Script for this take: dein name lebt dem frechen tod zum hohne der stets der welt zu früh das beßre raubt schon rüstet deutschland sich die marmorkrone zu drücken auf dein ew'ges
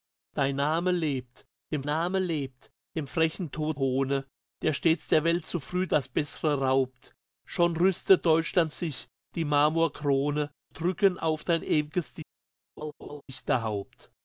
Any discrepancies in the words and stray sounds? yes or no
yes